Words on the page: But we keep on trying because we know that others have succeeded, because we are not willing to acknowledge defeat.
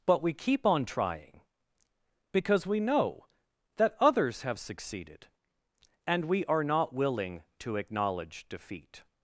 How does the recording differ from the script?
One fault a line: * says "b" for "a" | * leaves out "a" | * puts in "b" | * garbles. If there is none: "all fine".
* says "and" for "because"